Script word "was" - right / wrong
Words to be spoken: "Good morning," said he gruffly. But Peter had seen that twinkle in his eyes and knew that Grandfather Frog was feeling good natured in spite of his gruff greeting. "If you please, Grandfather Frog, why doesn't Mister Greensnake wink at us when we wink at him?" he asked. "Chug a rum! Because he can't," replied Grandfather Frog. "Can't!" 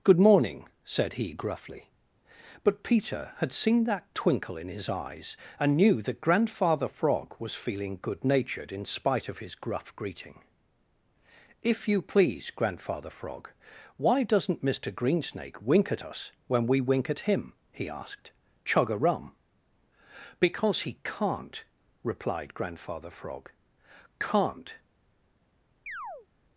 right